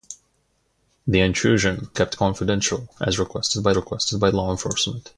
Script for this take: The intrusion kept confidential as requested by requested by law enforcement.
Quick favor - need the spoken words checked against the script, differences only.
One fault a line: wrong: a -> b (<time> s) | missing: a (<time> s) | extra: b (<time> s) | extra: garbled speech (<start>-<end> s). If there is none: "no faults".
no faults